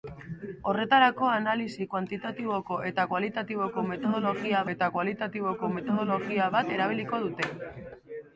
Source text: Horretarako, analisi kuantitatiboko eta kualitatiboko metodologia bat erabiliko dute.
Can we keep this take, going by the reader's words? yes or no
no